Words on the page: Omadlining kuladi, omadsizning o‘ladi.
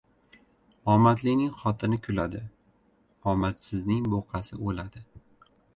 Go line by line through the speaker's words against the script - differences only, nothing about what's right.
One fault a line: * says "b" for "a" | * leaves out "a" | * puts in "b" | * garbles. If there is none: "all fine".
* puts in "xotini"
* puts in "buqasi"